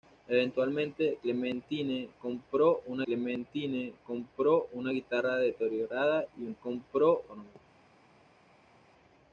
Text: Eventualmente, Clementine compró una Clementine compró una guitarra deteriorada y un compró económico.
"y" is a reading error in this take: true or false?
false